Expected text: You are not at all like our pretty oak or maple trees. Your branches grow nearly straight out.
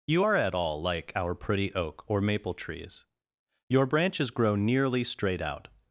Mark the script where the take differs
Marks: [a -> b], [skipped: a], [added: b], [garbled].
You are [skipped: not] at all like our pretty oak or maple trees. Your branches grow nearly straight out.